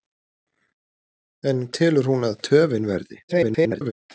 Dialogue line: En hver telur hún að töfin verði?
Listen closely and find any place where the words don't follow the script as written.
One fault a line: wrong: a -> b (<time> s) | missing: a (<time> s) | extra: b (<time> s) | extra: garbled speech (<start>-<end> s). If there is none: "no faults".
missing: hver (1.6 s)
extra: garbled speech (3.3-3.9 s)